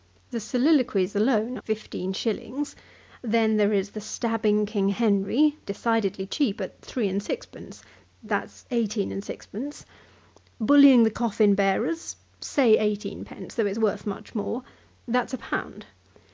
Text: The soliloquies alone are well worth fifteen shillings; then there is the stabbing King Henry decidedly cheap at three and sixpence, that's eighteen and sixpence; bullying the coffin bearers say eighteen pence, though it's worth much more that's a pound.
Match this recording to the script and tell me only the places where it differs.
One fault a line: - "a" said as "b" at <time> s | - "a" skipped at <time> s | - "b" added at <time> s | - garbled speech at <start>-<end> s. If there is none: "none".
- "are well worth" skipped at 1.6 s